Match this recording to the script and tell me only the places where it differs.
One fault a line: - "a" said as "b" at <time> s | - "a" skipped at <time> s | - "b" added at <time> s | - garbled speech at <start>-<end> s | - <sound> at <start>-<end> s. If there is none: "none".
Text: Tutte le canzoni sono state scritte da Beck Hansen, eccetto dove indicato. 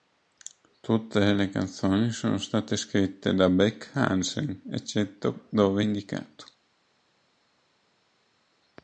none